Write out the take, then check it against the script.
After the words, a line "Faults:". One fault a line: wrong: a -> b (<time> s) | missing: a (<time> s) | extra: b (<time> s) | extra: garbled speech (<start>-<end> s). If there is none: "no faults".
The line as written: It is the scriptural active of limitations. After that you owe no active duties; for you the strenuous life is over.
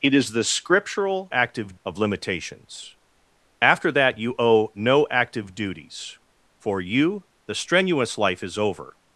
It is the scriptural active of limitations. After that you owe no active duties; for you the strenuous life is over.
Faults:
no faults